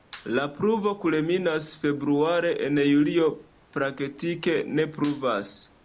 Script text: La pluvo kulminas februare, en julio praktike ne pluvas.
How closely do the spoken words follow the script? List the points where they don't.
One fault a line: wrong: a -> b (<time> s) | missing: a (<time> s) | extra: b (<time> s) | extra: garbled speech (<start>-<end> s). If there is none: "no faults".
no faults